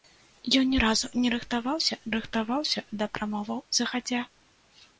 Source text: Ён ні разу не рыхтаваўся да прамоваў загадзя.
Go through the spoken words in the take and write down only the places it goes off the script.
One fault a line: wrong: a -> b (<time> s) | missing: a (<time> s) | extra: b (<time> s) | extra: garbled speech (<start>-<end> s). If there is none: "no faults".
extra: рыхтаваўся (2.2 s)